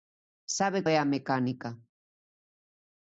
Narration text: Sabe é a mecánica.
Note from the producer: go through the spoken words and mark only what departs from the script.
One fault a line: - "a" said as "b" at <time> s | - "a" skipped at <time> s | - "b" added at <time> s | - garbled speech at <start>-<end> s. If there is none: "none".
none